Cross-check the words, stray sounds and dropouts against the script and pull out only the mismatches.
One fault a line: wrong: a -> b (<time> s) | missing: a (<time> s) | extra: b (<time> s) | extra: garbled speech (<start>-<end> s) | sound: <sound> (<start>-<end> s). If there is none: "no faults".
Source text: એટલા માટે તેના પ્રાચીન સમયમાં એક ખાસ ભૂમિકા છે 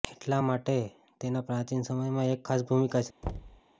sound: thud (3.2-3.6 s)